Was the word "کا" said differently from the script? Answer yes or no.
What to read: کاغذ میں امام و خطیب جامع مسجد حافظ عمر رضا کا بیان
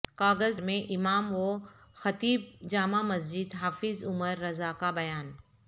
no